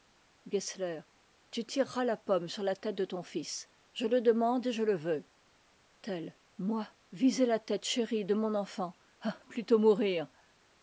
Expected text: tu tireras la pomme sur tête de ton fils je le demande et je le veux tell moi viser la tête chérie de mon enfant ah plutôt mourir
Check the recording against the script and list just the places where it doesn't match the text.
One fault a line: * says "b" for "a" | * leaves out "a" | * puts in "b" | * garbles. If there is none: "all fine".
* puts in "la"